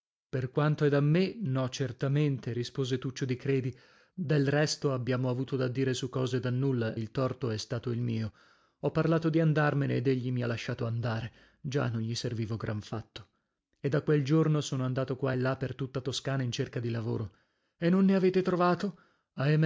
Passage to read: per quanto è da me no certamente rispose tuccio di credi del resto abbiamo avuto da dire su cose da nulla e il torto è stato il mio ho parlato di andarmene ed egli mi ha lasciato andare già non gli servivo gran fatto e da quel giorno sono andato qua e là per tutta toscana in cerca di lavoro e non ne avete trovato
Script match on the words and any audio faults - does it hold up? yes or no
no